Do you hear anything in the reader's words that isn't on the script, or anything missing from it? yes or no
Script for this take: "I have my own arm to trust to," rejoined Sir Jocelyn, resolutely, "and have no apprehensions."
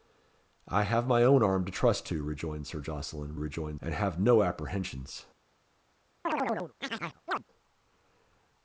yes